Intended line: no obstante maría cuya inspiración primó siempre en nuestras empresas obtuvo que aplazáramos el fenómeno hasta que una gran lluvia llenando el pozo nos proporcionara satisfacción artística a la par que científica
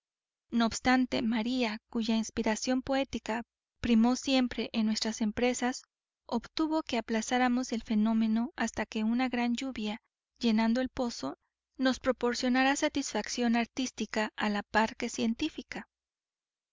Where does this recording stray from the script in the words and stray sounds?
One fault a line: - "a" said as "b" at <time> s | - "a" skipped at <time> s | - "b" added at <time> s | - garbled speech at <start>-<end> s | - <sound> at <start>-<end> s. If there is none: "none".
- "poética" added at 2.8 s